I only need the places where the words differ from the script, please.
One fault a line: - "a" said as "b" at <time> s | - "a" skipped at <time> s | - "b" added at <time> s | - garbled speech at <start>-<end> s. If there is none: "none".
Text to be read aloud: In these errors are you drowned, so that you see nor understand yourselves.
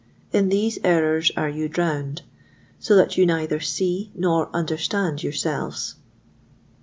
- "neither" added at 3.2 s